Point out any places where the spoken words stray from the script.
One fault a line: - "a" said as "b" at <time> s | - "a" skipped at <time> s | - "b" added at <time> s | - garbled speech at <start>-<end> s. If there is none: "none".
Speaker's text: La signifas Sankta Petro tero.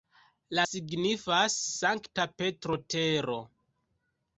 none